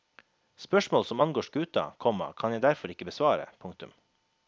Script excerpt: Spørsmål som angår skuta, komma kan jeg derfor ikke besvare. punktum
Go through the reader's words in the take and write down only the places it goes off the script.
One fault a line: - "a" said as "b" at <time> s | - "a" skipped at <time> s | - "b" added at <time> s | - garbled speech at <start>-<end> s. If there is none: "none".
none